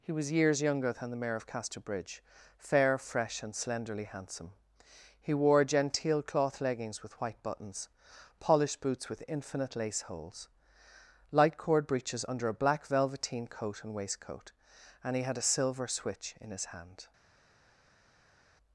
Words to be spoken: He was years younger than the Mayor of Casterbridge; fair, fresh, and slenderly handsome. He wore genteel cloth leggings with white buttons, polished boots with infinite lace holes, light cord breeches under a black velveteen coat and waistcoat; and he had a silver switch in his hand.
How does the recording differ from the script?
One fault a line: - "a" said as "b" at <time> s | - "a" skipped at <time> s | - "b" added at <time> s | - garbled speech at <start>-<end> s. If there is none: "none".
none